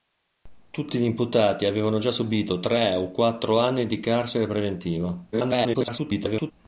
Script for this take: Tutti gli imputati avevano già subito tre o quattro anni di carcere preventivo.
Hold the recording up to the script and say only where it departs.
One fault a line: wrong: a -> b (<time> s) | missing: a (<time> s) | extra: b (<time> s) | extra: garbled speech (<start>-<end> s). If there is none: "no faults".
extra: garbled speech (5.3-6.5 s)